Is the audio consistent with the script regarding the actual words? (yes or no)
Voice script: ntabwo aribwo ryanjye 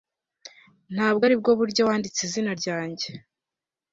no